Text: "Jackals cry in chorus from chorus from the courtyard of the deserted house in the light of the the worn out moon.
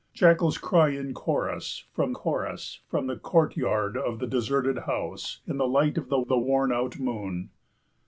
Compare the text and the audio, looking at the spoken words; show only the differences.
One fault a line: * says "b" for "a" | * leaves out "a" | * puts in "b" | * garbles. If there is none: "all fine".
all fine